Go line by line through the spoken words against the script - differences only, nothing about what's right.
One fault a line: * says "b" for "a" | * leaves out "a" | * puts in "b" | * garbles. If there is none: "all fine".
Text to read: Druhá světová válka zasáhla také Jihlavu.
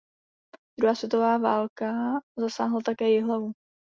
all fine